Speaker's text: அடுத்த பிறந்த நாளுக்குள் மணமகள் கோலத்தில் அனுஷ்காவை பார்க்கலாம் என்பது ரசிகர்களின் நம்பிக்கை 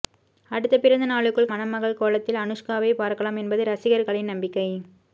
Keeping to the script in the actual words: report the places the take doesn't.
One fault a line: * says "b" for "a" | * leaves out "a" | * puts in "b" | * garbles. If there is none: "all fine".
all fine